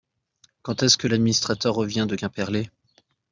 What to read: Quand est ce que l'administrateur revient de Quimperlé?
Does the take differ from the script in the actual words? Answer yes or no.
no